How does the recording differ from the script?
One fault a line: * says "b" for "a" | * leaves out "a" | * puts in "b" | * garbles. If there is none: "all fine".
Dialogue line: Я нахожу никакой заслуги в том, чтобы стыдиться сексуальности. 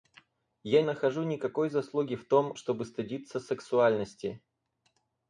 all fine